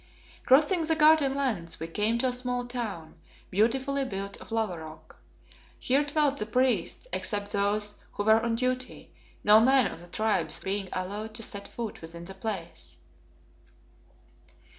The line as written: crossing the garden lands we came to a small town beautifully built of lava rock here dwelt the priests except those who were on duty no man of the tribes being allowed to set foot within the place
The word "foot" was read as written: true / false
true